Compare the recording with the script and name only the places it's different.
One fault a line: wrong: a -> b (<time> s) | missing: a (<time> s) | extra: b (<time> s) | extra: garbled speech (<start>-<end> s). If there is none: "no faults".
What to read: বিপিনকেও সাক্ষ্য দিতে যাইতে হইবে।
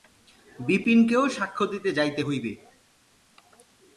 no faults